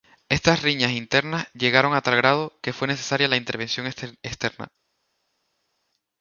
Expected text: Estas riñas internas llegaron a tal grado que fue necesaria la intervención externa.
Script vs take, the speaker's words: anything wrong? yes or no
no